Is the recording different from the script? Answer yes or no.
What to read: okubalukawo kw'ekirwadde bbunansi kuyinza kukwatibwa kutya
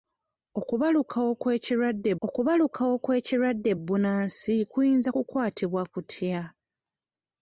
yes